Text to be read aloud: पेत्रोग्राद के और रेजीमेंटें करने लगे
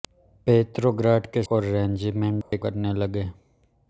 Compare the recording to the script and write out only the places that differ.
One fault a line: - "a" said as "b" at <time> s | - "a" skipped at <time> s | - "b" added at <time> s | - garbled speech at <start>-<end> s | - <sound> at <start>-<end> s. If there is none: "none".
- dropout at 2.4-2.5 s